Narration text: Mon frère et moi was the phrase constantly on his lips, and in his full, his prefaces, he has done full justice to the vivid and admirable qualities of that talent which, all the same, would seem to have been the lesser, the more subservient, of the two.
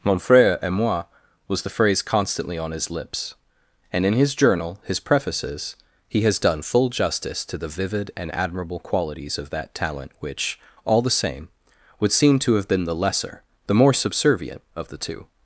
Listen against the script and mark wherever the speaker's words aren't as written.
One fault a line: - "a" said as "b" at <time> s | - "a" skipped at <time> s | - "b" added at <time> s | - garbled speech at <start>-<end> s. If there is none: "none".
- "full" said as "journal" at 4.3 s